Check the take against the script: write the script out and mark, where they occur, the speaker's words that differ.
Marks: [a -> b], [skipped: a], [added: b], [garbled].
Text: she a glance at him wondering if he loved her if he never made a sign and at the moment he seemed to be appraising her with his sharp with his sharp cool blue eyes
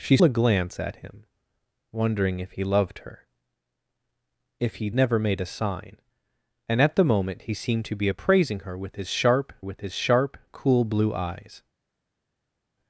she a glance at him wondering if he loved her if he never made a sign and at the moment he seemed to be appraising her with his sharp with his sharp cool blue eyes